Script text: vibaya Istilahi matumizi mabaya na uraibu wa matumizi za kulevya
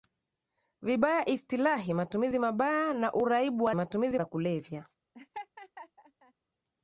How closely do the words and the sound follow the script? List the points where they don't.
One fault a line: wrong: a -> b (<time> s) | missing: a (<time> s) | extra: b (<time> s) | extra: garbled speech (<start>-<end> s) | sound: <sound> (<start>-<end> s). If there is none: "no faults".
sound: laugh (5.1-6.3 s)